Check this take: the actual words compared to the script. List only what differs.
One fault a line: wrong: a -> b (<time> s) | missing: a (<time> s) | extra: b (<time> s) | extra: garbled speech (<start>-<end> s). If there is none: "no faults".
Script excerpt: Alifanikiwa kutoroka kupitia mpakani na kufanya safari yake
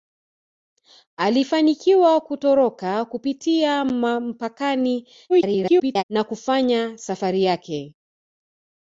extra: garbled speech (5.3-6.0 s)